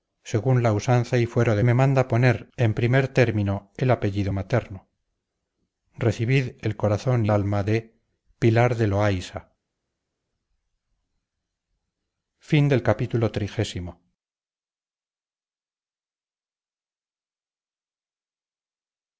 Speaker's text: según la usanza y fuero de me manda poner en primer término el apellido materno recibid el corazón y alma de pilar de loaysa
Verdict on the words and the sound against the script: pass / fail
pass